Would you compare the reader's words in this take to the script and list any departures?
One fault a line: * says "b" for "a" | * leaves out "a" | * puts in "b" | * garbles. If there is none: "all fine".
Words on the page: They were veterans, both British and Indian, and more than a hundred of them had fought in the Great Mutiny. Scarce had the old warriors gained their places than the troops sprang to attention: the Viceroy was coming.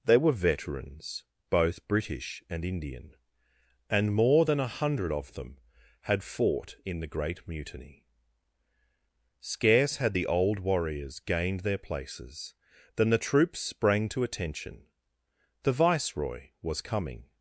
all fine